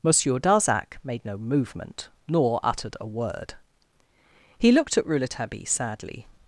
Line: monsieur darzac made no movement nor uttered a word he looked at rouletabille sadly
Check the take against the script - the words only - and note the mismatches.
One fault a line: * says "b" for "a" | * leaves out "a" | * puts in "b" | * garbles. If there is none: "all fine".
all fine